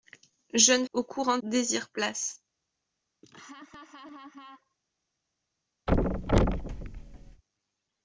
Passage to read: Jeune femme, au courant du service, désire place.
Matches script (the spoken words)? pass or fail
fail